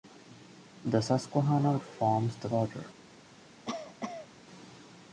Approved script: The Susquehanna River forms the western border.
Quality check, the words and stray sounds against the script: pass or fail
fail